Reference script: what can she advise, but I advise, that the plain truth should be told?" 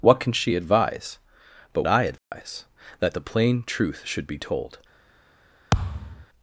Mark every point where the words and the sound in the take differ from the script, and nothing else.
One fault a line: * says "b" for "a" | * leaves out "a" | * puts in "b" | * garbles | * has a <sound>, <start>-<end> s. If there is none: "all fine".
* has a dropout, 2.2-2.3 s
* has a thud, 5.7-6.3 s